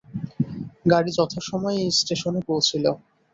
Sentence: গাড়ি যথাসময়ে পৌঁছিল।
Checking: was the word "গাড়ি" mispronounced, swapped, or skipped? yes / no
no